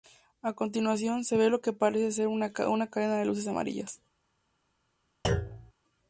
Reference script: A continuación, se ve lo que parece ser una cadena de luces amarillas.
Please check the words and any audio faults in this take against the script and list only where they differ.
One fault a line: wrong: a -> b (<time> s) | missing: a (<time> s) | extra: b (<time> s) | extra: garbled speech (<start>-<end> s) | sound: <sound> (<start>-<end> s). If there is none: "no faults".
sound: thud (5.2-5.7 s)